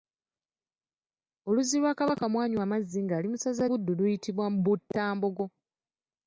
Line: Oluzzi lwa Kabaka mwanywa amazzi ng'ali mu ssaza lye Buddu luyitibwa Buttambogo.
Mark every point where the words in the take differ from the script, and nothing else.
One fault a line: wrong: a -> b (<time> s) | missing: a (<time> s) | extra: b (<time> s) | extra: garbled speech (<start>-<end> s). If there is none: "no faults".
missing: lye (3.6 s)